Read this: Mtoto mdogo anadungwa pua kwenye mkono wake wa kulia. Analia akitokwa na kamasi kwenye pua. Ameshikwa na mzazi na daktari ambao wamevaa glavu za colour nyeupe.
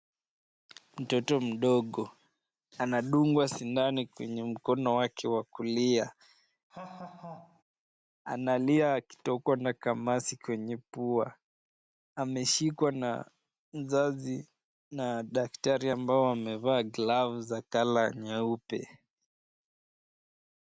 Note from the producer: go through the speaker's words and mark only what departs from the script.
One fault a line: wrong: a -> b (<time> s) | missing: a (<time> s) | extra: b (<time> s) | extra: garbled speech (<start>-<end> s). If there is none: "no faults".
wrong: pua -> sindano (3.5 s)